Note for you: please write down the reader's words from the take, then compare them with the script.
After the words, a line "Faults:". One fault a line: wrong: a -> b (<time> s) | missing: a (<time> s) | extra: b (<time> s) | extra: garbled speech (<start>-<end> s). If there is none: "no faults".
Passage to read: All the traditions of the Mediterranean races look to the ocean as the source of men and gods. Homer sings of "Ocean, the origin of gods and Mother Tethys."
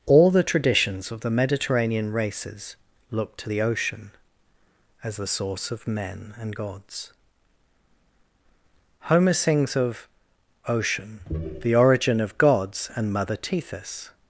All the traditions of the Mediterranean races look to the ocean as the source of men and gods. Homer sings of "Ocean, the origin of gods and Mother Tethys."
Faults:
no faults